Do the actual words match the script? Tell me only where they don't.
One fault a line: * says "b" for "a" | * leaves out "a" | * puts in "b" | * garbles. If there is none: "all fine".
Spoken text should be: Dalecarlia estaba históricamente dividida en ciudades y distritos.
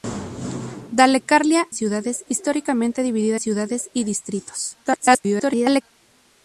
* says "ciudades" for "estaba"
* leaves out "en"
* garbles